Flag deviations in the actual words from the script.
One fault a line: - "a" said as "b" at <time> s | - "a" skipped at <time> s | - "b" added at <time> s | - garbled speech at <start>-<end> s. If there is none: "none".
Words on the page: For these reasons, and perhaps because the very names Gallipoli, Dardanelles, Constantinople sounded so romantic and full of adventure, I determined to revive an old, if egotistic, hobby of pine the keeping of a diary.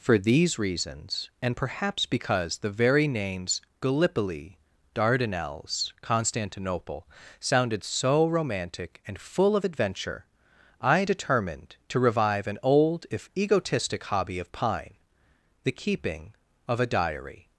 none